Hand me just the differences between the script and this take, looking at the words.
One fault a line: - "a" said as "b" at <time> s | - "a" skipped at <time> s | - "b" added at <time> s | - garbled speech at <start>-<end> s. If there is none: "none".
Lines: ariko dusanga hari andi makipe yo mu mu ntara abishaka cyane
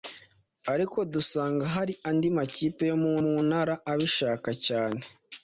none